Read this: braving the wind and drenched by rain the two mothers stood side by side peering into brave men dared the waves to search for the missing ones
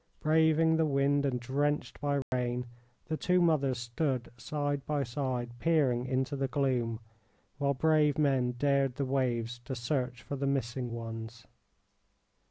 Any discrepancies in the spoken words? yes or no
yes